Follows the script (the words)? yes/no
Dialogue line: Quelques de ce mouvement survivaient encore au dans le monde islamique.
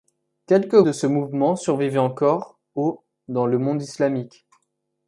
yes